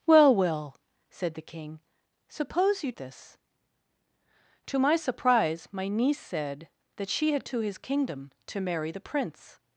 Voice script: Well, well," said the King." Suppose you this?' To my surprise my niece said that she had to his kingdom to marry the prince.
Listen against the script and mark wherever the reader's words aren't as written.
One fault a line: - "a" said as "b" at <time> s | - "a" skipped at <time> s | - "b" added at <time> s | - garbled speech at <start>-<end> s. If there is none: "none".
none